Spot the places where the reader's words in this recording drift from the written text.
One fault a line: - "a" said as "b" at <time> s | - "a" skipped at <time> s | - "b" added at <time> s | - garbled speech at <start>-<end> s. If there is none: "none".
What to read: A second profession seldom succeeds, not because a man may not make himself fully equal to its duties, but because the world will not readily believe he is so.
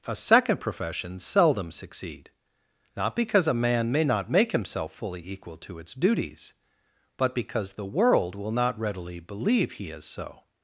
- "succeeds" said as "succeed" at 1.7 s